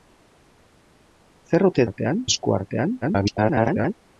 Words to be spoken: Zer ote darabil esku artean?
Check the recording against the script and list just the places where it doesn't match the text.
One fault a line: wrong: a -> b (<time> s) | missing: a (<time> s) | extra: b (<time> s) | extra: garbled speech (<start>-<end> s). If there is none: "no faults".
wrong: darabil -> artean (1.8 s)
extra: garbled speech (3.0-3.9 s)